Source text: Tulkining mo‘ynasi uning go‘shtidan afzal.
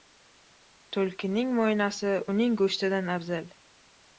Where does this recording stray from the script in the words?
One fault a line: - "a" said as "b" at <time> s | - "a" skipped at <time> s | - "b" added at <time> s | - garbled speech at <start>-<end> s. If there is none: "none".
none